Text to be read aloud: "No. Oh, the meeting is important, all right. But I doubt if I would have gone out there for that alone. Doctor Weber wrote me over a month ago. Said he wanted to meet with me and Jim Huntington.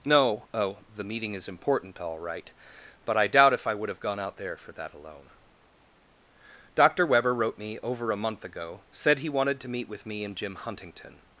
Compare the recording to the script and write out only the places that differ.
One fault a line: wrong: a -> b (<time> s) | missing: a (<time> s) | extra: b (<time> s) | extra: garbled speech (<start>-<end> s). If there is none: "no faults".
no faults